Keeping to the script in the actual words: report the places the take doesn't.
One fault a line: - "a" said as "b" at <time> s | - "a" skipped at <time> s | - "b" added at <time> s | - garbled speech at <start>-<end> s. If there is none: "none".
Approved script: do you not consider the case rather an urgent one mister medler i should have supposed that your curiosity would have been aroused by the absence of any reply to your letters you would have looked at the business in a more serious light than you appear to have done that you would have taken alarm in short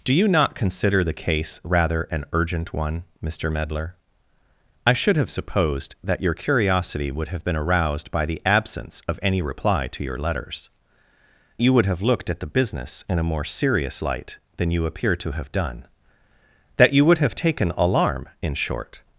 none